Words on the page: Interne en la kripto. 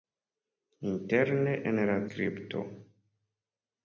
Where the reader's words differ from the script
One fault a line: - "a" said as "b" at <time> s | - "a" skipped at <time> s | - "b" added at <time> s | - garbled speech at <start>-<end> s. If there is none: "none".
none